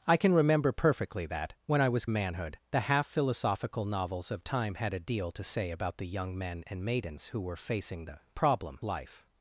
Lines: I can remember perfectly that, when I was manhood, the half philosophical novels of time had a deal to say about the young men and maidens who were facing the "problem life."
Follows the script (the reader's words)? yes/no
yes